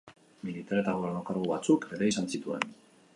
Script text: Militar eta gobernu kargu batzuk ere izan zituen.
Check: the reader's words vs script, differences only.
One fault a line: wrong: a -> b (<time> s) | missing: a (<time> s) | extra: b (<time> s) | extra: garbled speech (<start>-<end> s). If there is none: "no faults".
no faults